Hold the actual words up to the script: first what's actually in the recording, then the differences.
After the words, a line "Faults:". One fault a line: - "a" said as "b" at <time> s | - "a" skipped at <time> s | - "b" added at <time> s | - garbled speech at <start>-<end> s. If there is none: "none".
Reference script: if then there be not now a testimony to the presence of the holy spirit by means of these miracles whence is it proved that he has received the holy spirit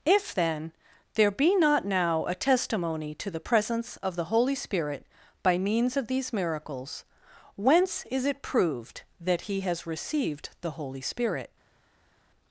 if then there be not now a testimony to the presence of the holy spirit by means of these miracles whence is it proved that he has received the holy spirit
Faults:
none